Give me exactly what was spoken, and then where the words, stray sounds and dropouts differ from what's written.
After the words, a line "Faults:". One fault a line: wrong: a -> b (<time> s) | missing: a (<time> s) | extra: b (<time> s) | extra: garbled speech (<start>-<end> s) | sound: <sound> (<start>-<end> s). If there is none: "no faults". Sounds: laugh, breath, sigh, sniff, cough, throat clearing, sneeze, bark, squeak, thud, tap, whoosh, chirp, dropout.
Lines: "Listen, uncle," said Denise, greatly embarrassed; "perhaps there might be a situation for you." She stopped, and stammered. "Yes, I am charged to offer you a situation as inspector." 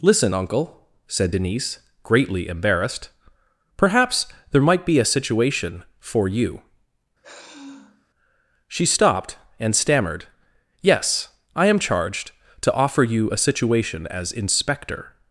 "Listen, uncle," said Denise, greatly embarrassed; "perhaps there might be a situation for you." She stopped, and stammered. "Yes, I am charged to offer you a situation as inspector."
Faults:
sound: sigh (7.2-8.1 s)